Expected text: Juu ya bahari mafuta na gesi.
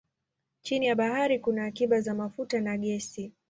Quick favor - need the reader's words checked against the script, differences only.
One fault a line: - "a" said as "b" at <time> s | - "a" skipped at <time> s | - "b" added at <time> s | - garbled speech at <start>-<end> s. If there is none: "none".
- "Juu" said as "Chini" at 0.6 s
- "kuna akiba za" added at 1.4 s